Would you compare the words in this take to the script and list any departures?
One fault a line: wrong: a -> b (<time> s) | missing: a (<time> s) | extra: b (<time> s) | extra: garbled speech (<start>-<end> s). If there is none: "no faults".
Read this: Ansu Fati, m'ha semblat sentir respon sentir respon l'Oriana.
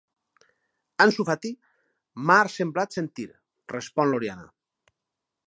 missing: sentir respon (4.1 s)